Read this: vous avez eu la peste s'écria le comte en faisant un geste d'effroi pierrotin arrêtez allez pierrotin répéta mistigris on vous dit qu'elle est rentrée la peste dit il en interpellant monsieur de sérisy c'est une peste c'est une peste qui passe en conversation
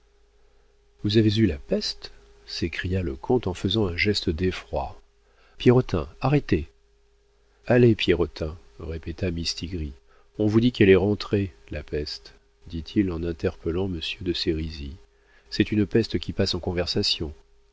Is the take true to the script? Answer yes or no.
no